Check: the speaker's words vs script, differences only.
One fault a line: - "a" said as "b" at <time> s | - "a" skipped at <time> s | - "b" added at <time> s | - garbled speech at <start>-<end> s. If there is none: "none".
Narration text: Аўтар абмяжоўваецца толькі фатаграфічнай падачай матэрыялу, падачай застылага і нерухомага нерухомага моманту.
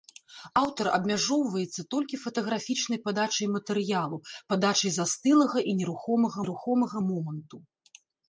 none